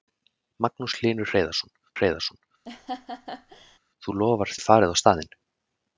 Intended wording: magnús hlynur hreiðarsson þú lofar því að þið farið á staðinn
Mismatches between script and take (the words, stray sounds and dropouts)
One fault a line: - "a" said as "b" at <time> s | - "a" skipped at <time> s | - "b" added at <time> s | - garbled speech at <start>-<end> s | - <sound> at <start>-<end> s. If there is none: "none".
- "hreiðarsson" added at 2.0 s
- laugh at 2.7-3.8 s
- "því að" skipped at 4.5 s